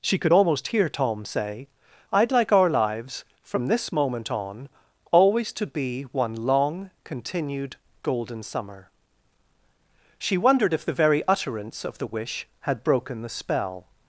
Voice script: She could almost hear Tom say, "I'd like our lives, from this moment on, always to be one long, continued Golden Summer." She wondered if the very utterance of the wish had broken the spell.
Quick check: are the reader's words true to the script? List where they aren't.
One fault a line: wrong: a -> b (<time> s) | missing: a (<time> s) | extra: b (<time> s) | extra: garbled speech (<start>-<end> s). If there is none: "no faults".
no faults